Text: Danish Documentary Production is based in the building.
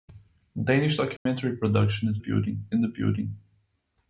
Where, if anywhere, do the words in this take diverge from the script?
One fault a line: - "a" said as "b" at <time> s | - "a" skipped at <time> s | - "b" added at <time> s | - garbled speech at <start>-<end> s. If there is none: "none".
- "based" said as "building" at 2.2 s